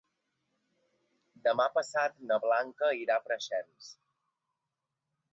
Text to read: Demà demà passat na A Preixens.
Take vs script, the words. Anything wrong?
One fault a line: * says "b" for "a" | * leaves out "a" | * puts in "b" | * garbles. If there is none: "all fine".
* leaves out "demà"
* puts in "Blanca irà"